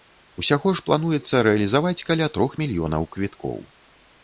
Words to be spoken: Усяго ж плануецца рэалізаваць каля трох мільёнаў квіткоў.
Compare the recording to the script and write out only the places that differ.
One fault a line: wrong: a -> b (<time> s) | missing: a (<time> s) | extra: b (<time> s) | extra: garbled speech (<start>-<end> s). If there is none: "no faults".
no faults